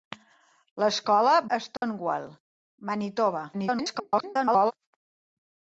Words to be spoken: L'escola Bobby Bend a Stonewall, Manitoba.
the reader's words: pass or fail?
fail